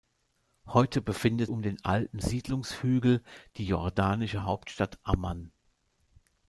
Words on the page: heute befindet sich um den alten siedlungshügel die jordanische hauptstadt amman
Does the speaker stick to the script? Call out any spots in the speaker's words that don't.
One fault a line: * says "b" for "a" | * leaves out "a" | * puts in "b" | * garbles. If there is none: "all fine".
* leaves out "sich"